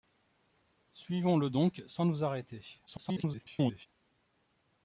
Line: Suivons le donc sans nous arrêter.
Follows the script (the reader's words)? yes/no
no